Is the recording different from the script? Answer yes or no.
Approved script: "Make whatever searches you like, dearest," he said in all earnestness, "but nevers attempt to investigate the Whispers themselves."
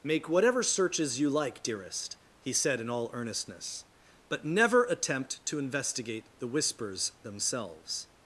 yes